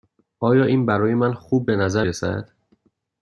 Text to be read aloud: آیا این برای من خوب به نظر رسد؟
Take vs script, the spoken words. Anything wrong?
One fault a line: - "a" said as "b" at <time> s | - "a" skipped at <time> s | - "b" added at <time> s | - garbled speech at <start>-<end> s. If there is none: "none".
none